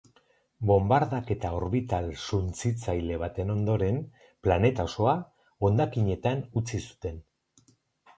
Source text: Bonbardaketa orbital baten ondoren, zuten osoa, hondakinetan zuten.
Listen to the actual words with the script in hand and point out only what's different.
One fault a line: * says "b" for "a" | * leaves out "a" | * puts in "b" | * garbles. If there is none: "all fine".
* puts in "suntsitzaile"
* says "planeta" for "zuten"
* puts in "utzi"